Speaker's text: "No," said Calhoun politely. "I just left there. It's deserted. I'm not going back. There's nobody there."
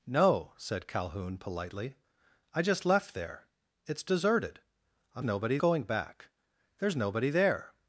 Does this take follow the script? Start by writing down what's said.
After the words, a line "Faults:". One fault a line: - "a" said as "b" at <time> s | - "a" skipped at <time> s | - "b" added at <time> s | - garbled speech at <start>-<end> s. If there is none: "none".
"No," said Calhoun politely. "I just left there. It's deserted. I'm nobody going back. There's nobody there."
Faults:
- "not" said as "nobody" at 5.2 s